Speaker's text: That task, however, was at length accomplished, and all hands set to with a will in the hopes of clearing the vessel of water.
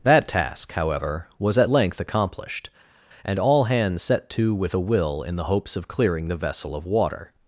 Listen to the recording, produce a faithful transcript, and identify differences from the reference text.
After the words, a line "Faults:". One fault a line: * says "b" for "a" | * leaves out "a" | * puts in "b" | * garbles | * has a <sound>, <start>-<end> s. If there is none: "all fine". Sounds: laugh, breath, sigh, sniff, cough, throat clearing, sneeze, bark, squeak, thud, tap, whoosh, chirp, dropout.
That task, however, was at length accomplished, and all hands set to with a will in the hopes of clearing the vessel of water.
Faults:
all fine